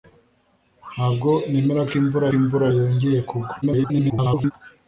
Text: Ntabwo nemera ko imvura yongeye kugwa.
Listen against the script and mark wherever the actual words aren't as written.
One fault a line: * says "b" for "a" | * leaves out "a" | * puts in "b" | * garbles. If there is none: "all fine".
* puts in "imvura"
* garbles